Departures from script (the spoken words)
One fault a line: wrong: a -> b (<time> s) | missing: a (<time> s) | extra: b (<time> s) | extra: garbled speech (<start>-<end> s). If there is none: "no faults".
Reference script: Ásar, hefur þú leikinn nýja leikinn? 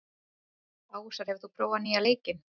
wrong: leikinn -> prófað (1.6 s)